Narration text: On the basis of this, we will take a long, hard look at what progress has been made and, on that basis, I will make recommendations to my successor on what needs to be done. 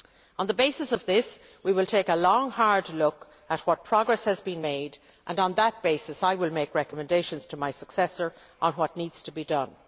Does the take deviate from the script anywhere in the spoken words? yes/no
no